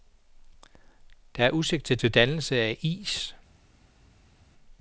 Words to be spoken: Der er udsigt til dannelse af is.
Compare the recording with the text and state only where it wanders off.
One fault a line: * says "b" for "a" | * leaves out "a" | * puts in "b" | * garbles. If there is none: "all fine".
* puts in "til"